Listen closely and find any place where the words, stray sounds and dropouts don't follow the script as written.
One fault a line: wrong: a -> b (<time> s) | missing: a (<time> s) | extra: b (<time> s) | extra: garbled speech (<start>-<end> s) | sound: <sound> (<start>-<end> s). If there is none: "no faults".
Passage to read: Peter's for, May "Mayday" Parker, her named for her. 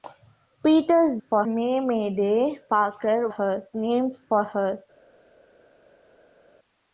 no faults